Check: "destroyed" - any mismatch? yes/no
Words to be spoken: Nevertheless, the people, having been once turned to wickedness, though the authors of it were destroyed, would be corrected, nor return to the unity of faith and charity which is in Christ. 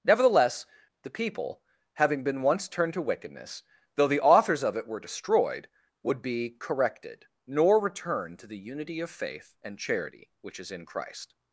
no